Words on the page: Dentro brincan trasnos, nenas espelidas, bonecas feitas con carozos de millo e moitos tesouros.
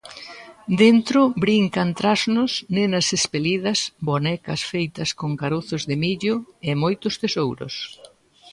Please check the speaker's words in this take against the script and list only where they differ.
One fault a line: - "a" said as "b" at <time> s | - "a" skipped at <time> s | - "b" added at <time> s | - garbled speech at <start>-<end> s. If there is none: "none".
none